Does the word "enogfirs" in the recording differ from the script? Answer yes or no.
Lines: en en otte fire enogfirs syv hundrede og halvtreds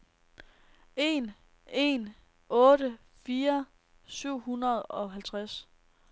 yes